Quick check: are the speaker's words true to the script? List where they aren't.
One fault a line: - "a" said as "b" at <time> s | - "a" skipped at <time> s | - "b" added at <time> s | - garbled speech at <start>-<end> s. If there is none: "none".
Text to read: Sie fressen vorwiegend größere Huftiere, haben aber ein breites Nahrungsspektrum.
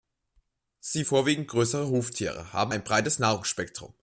- "fressen" skipped at 1.1 s
- "aber" skipped at 2.7 s